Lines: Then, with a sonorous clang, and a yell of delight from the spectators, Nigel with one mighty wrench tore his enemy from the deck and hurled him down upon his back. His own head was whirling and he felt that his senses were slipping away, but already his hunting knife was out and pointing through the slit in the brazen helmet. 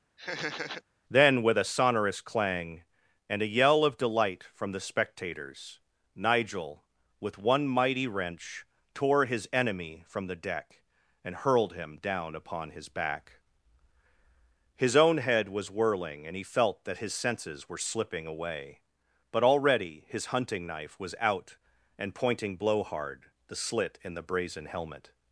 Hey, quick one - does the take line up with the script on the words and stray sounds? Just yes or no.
no